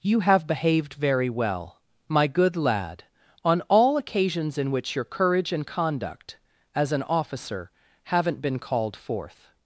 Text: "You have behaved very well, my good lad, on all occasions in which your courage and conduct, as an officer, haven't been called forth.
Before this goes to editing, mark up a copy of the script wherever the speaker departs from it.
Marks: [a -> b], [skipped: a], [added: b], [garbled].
"You have behaved very well, my good lad, on all occasions in which your courage and conduct, as an officer, haven't been called forth.